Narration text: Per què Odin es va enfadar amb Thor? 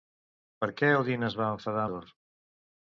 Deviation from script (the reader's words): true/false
true